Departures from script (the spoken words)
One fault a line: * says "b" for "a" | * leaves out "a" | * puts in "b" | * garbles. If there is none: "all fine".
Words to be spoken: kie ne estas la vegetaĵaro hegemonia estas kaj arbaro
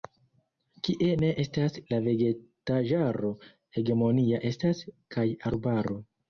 all fine